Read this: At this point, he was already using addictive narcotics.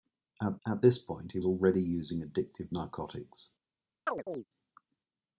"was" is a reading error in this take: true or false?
true